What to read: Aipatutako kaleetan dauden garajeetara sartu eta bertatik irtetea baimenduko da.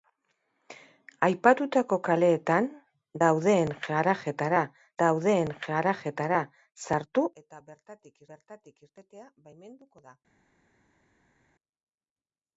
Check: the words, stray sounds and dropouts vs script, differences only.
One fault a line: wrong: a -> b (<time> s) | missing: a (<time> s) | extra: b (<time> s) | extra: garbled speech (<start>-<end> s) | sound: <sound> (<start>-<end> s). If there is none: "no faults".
extra: dauden garajeetara (5.0 s)
extra: bertatik (8.3 s)